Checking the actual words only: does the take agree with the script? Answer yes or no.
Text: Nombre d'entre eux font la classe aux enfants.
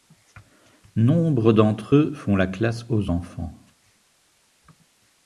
yes